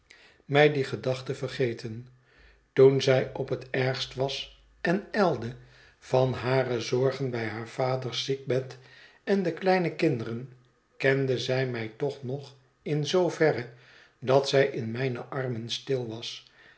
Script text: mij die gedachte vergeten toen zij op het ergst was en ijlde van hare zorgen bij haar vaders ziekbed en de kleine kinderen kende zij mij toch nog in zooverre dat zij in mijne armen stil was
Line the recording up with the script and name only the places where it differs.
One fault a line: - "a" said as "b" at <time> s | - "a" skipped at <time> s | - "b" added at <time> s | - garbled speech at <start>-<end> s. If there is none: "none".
none